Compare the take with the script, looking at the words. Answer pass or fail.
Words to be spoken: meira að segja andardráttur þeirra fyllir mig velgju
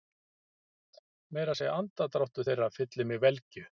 pass